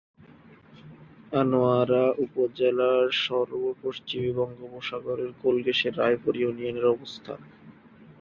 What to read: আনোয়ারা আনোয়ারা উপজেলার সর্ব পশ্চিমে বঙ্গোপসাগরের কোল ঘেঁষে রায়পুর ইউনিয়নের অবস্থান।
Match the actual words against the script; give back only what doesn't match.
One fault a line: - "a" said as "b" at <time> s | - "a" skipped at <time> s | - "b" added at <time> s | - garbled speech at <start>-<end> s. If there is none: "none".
- "আনোয়ারা" skipped at 2.0 s